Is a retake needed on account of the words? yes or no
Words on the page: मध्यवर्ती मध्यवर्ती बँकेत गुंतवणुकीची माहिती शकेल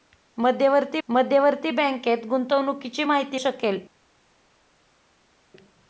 no